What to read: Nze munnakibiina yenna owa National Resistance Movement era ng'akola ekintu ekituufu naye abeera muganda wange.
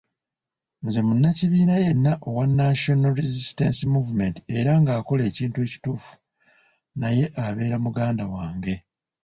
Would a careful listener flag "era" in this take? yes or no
no